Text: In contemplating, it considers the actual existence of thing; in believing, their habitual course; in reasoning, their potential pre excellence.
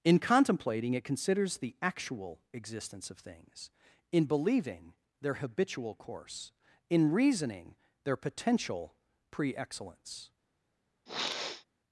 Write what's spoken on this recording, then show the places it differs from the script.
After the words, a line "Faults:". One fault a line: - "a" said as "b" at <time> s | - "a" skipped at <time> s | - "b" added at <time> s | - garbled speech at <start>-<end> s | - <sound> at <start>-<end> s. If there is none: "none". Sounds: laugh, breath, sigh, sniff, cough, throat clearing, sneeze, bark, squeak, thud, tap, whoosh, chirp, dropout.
In contemplating, it considers the actual existence of things; in believing, their habitual course; in reasoning, their potential pre excellence.
Faults:
- "thing" said as "things" at 3.2 s
- sniff at 11.1-11.7 s